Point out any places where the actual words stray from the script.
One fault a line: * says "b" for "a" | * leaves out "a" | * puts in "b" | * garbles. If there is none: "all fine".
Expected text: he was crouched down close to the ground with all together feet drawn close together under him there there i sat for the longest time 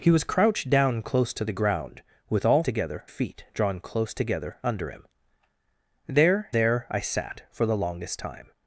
all fine